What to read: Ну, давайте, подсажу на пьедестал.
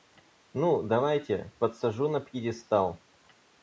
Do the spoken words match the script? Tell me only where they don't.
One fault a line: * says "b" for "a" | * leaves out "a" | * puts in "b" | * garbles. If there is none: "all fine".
all fine